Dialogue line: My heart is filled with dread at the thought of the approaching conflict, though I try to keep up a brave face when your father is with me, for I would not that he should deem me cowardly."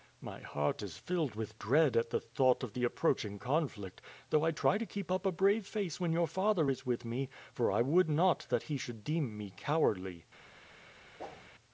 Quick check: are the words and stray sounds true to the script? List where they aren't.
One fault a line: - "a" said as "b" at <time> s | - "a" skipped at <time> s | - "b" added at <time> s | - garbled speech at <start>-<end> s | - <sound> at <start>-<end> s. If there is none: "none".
- whoosh at 11.2-11.5 s